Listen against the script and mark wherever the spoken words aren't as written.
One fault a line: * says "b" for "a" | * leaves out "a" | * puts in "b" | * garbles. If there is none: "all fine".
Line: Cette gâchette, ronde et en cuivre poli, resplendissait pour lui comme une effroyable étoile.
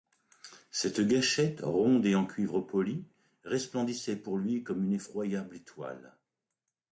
all fine